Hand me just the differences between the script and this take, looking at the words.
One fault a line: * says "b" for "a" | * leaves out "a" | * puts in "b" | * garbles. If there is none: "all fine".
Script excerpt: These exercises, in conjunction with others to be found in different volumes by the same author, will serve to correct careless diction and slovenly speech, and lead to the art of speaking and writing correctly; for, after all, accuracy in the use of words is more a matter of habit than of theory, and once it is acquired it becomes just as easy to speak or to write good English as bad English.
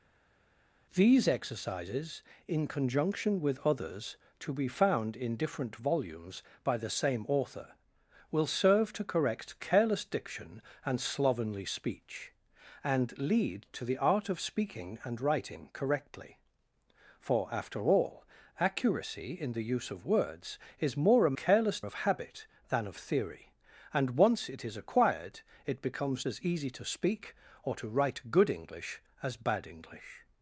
* says "careless" for "matter"
* leaves out "just"